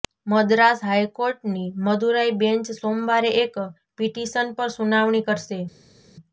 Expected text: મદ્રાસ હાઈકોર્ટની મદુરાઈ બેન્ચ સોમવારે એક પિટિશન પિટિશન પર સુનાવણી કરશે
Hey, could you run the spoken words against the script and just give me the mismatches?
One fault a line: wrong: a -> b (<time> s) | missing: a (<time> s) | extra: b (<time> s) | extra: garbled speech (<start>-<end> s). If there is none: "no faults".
missing: પિટિશન (4.5 s)